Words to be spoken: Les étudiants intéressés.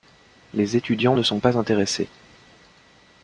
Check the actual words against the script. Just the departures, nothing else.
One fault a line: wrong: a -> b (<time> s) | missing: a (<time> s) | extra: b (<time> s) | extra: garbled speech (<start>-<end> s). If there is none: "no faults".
extra: ne sont pas (1.1 s)